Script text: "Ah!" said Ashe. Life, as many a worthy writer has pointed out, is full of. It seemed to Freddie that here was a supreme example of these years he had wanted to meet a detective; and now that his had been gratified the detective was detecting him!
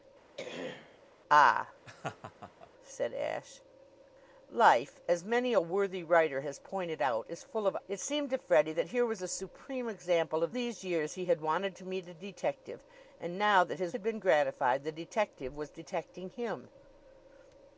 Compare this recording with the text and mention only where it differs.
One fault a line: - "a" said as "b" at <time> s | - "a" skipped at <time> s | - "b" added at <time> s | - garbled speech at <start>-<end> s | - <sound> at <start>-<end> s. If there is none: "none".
- throat clearing at 0.4-1.0 s
- laugh at 1.8-2.7 s